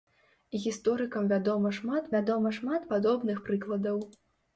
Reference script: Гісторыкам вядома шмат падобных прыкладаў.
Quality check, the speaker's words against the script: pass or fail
fail